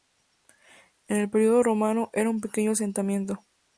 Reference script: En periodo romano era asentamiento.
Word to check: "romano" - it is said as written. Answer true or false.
true